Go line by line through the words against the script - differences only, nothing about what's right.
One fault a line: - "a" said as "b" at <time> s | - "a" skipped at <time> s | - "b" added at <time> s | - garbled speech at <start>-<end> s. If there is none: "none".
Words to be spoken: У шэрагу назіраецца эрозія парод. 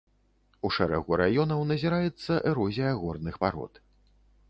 - "раёнаў" added at 1.2 s
- "горных" added at 3.0 s